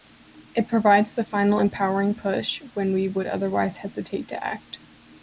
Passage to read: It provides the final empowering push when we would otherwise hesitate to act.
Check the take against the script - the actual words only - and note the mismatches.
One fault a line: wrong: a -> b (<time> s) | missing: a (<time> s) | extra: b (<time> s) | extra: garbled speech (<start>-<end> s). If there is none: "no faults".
no faults